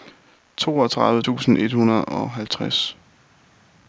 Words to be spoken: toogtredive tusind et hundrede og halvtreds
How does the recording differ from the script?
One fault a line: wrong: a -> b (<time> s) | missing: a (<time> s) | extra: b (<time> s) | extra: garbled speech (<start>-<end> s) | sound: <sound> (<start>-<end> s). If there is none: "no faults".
no faults